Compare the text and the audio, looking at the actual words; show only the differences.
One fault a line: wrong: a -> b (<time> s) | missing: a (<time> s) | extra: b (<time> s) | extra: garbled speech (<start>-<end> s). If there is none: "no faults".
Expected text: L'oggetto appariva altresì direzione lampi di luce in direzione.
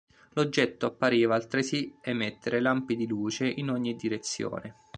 wrong: direzione -> emettere (2.0 s)
extra: ogni (3.7 s)